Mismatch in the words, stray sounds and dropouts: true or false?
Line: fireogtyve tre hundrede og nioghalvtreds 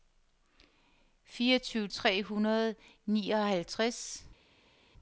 false